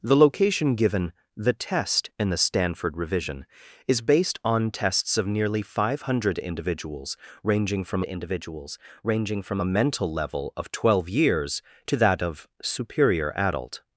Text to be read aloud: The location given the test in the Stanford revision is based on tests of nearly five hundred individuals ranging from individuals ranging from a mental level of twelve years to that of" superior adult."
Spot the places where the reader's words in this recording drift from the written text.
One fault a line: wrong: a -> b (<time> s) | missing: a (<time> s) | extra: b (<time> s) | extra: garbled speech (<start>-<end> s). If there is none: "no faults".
no faults